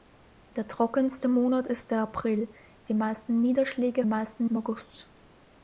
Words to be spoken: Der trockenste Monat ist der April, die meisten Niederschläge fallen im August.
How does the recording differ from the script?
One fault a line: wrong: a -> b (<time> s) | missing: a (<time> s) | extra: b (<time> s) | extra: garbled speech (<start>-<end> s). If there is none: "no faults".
wrong: fallen -> meisten (4.1 s)